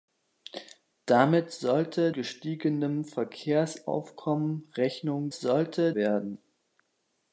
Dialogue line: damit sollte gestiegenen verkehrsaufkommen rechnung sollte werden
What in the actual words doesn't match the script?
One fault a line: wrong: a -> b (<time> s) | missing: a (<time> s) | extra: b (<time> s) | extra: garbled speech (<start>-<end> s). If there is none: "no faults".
no faults